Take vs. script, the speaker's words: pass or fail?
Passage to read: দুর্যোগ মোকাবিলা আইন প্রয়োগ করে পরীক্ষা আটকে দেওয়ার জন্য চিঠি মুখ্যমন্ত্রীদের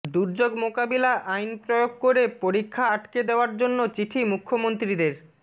pass